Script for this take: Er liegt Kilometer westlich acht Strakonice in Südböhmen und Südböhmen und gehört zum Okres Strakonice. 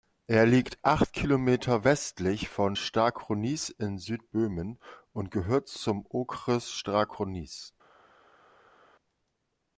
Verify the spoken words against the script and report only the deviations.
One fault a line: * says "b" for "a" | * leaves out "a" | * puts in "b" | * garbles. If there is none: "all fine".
* puts in "acht"
* says "von" for "acht"
* leaves out "Südböhmen und"